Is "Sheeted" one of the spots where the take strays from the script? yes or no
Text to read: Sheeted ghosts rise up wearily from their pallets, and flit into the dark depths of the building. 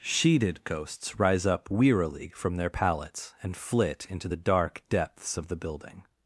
no